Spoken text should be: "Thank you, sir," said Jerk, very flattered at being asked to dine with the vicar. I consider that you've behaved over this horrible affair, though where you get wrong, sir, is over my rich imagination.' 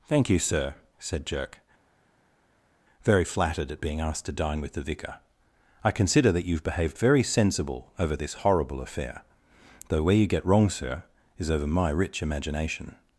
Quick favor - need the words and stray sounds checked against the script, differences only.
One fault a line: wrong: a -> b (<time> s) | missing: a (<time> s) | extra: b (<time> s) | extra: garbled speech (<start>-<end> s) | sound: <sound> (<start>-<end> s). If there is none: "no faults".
extra: very sensible (7.0 s)